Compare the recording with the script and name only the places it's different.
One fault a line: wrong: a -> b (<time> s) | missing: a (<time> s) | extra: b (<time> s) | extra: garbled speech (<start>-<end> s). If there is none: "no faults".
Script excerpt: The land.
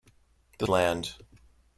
no faults